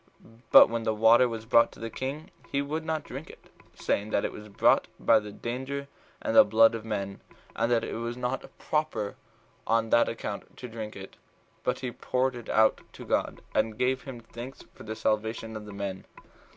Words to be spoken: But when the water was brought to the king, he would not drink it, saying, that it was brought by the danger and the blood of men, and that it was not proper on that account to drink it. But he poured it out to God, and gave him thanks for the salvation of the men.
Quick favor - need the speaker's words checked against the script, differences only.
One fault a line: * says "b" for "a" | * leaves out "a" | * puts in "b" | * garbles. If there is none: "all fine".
all fine